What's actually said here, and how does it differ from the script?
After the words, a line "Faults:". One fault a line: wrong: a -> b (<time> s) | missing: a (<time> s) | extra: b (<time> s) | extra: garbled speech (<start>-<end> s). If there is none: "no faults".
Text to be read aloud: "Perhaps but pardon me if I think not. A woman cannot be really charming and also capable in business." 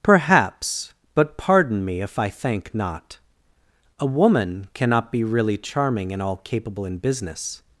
"Perhaps but pardon me if I thank not. A woman cannot be really charming and all capable in business."
Faults:
wrong: think -> thank (2.3 s)
wrong: also -> all (6.2 s)